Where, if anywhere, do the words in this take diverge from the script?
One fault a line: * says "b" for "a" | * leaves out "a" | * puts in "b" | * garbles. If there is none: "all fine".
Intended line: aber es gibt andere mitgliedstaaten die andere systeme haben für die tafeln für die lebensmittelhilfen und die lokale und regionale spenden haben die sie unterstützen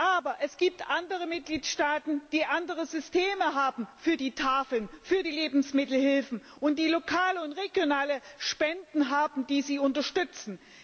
all fine